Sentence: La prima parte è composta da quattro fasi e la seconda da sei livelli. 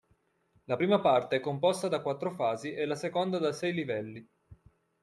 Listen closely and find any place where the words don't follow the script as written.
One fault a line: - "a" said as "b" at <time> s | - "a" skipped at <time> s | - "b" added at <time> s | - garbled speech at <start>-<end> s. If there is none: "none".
none